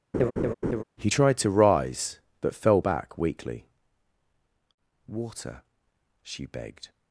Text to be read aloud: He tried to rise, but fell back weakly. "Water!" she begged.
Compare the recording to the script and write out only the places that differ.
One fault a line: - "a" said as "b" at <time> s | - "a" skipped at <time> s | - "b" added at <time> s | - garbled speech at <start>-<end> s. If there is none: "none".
none